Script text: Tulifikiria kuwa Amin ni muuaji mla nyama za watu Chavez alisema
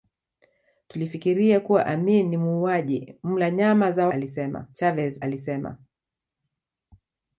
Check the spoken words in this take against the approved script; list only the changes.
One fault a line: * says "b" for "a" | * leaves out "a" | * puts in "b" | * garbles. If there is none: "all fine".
* says "alisema" for "watu"